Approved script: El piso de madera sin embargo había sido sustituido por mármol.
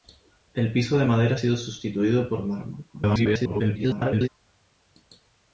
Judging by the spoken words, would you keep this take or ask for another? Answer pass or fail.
fail